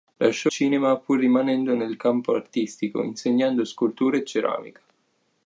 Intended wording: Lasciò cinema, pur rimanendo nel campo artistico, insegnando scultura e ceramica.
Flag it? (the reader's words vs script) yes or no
no